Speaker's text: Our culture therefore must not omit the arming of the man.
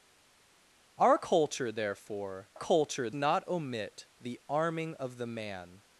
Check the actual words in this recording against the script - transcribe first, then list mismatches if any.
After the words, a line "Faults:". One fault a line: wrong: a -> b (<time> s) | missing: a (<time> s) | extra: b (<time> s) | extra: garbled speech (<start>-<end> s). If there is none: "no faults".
Our culture therefore culture not omit the arming of the man.
Faults:
wrong: must -> culture (2.5 s)